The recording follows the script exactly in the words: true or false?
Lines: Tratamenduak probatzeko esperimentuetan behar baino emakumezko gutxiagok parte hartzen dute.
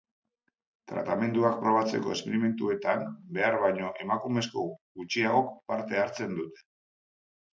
true